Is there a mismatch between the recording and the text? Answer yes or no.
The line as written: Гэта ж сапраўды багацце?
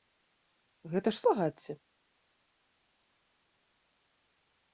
yes